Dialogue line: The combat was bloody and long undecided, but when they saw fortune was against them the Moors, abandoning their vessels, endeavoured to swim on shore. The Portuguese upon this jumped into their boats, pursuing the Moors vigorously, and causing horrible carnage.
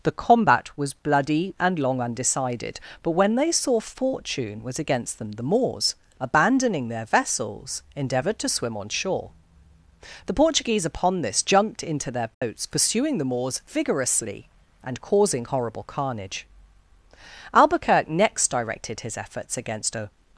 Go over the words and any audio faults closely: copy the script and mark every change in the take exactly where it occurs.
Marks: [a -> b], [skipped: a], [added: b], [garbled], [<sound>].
The combat was bloody and long undecided, but when they saw fortune was against them the Moors, abandoning their vessels, endeavoured to swim on shore. The Portuguese upon this jumped into their boats, [dropout] pursuing the Moors vigorously, and causing horrible carnage. [added: Albuquerque next directed his efforts against a]